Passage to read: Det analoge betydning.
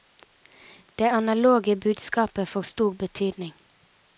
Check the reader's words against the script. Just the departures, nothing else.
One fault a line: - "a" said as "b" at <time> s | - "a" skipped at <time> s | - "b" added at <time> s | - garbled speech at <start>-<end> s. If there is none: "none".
- "budskapet får stor" added at 1.7 s